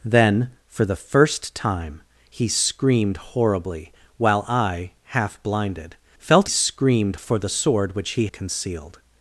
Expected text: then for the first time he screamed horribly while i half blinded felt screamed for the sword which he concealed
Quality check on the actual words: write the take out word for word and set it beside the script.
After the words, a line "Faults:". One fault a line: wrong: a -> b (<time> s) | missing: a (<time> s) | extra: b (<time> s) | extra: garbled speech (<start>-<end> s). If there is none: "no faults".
then for the first time he screamed horribly while i half blinded felt screamed for the sword which he concealed
Faults:
no faults